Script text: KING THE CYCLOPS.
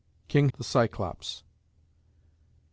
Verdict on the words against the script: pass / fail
pass